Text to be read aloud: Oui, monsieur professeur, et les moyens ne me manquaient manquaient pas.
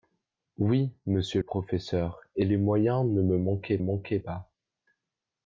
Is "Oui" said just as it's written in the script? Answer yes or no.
yes